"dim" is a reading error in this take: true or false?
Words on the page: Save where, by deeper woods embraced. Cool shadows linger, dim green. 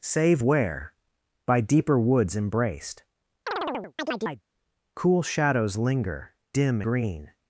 false